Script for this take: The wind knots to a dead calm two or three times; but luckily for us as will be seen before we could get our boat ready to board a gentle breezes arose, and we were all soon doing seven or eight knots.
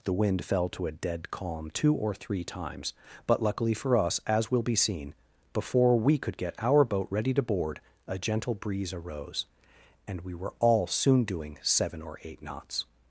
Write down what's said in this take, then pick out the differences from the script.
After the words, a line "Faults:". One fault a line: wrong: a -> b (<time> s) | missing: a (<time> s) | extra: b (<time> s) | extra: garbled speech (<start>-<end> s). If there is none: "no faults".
The wind fell to a dead calm two or three times; but luckily for us as will be seen before we could get our boat ready to board a gentle breeze arose, and we were all soon doing seven or eight knots.
Faults:
wrong: knots -> fell (0.4 s)
wrong: breezes -> breeze (8.6 s)